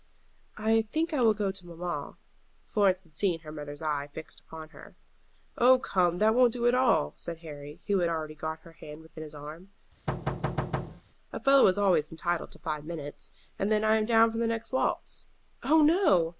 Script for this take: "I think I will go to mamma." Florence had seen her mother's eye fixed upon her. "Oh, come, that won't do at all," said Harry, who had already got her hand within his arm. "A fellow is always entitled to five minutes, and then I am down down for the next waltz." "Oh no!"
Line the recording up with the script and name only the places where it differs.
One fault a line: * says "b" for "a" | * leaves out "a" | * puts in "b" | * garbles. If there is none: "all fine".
* leaves out "down"